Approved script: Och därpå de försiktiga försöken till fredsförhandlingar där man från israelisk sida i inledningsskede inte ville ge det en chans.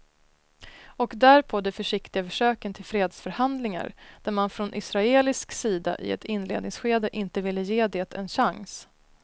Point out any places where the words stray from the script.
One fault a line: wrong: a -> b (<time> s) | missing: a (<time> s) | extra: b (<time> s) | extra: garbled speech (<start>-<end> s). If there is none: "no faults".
extra: ett (6.1 s)